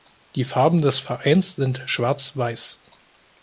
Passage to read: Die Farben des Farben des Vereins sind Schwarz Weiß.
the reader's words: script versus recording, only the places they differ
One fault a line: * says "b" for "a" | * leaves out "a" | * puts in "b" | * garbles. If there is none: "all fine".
* leaves out "Farben des"